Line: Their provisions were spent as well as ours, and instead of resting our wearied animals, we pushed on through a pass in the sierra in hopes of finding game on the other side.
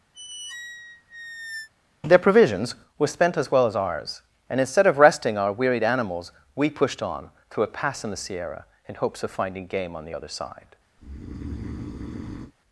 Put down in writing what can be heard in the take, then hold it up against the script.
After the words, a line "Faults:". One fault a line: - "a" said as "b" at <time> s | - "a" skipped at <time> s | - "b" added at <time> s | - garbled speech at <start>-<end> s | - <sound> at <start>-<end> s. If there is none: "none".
Their provisions were spent as well as ours, and instead of resting our wearied animals, we pushed on through a pass in the sierra in hopes of finding game on the other side.
Faults:
- squeak at 0.1-1.7 s
- breath at 11.0-12.5 s